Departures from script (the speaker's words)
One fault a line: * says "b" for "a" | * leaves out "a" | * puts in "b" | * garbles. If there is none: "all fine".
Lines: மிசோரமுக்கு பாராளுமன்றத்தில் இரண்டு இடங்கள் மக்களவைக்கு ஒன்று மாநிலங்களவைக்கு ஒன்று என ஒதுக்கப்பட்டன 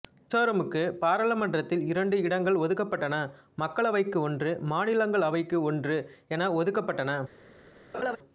* puts in "ஒதுக்கப்பட்டன"